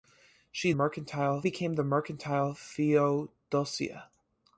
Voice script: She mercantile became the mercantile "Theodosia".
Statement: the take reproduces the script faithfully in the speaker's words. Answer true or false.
true